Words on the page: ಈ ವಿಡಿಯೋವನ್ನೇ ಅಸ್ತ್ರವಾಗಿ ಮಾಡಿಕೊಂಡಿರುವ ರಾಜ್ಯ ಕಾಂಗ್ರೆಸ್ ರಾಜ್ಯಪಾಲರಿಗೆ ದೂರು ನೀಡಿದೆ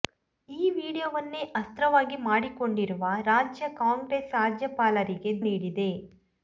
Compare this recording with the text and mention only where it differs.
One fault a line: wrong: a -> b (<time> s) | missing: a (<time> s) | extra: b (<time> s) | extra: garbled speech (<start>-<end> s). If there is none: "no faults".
missing: ದೂರು (5.3 s)